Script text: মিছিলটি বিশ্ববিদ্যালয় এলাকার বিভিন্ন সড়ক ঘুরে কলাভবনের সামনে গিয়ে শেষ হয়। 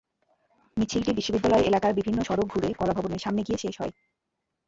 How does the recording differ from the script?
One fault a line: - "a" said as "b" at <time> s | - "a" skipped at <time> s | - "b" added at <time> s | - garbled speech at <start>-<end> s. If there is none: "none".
none